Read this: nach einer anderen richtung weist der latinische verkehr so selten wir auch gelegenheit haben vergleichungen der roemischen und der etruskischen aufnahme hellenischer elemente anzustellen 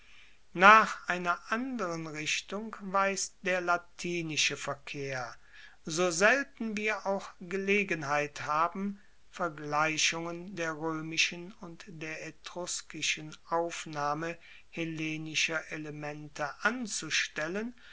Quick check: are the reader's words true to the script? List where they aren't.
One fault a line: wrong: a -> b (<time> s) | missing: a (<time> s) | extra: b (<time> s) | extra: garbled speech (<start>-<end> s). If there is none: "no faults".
no faults